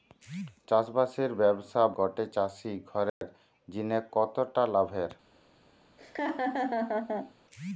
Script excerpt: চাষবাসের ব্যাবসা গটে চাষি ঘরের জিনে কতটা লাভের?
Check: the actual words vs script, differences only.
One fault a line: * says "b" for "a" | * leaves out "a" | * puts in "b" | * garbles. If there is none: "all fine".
all fine